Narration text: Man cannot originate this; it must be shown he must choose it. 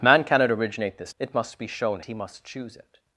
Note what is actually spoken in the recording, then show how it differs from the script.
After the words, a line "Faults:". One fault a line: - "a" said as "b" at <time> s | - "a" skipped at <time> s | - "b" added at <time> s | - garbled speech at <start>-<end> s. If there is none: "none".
Man cannot originate this; it must be shown he must choose it.
Faults:
none